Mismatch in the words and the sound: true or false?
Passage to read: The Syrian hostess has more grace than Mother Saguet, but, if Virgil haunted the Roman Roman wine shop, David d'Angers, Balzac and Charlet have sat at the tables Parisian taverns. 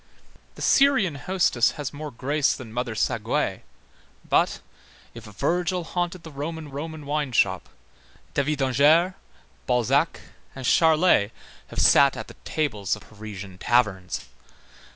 false